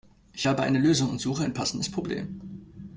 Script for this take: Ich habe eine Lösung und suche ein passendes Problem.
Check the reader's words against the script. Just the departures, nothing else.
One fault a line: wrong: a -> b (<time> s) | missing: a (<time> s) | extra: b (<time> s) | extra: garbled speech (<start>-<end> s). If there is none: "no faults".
no faults